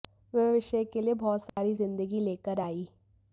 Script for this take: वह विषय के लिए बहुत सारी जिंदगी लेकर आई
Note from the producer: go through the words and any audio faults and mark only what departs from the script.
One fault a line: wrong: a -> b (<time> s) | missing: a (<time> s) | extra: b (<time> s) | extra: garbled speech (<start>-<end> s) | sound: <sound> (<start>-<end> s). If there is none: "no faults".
sound: dropout (1.5-1.6 s)